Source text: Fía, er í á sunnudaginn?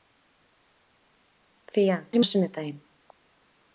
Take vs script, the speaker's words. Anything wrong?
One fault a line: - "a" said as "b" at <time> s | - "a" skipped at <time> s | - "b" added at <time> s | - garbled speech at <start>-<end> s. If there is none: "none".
none